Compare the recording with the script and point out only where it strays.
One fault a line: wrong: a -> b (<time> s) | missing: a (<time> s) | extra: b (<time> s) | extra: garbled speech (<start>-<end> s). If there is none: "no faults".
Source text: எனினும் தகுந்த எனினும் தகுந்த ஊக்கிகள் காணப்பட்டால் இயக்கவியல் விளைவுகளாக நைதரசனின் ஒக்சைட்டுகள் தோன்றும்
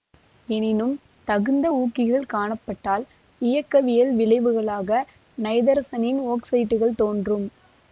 missing: எனினும் தகுந்த (1.7 s)